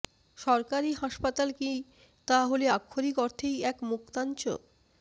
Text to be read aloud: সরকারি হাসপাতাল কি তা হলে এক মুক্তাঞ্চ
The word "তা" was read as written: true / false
true